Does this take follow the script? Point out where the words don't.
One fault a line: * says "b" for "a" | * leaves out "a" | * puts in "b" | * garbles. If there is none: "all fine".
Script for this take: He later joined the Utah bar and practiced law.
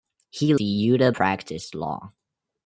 * leaves out "later joined"
* leaves out "bar and"